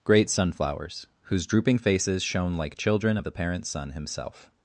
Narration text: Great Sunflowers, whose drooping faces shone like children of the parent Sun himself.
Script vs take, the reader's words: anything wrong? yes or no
no